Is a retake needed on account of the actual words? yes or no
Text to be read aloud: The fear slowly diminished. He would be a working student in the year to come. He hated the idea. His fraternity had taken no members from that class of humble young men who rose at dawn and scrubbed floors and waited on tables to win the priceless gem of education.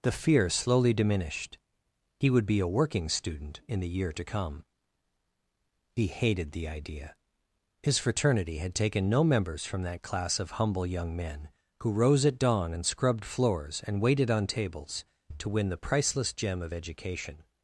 no